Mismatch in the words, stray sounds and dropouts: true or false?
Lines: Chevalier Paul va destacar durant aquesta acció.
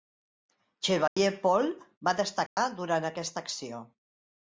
true